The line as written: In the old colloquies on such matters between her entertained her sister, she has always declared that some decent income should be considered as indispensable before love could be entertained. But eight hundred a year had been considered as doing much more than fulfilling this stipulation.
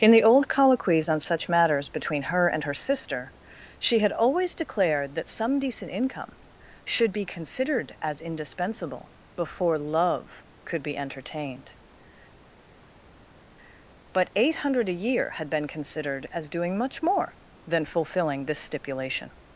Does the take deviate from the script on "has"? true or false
true